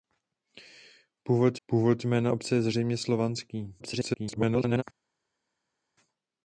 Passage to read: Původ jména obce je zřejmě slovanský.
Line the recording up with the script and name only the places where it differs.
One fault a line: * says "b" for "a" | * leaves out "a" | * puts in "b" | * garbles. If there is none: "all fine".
* puts in "původ"
* garbles